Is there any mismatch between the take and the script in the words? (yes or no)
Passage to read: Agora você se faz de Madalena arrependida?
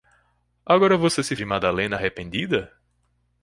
yes